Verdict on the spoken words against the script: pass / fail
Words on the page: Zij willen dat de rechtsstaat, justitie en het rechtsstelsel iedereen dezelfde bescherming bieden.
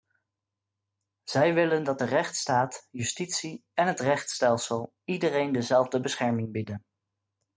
pass